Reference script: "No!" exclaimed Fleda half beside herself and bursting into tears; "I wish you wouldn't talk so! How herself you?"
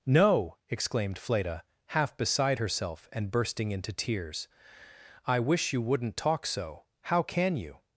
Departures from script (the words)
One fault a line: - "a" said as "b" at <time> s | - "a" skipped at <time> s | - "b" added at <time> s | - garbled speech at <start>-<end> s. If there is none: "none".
- "herself" said as "can" at 7.2 s